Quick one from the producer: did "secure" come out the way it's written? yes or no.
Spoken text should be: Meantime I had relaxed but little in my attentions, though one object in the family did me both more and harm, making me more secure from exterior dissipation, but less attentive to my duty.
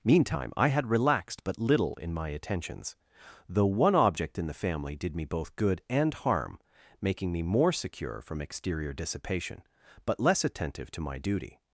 yes